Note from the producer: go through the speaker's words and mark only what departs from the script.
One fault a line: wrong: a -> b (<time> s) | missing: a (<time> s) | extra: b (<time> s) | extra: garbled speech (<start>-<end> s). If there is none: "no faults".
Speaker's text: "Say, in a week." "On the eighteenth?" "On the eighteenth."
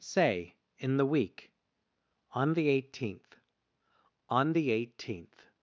wrong: a -> the (1.0 s)